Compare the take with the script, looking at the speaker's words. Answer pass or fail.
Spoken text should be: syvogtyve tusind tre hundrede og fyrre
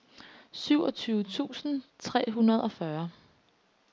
pass